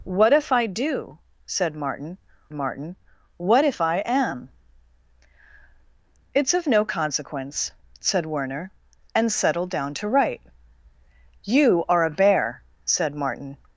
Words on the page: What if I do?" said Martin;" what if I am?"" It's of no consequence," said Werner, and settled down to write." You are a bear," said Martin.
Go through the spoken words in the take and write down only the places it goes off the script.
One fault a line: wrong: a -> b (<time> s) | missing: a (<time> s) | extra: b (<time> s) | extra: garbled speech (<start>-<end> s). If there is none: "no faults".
extra: Martin (2.5 s)